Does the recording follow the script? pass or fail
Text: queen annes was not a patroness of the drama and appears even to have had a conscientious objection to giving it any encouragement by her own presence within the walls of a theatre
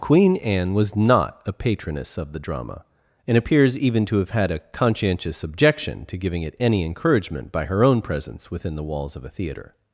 fail